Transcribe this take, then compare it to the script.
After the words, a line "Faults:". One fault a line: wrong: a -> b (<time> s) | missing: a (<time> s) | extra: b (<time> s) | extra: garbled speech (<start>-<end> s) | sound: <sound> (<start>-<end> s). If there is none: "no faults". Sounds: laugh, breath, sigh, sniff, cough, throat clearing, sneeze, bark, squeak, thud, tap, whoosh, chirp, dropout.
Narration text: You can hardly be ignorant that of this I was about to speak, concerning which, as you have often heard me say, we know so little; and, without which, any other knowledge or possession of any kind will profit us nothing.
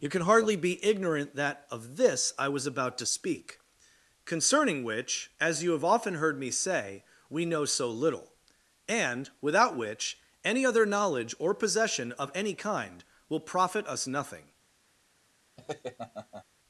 You can hardly be ignorant that of this I was about to speak, concerning which, as you have often heard me say, we know so little; and, without which, any other knowledge or possession of any kind will profit us nothing.
Faults:
sound: laugh (15.6-16.4 s)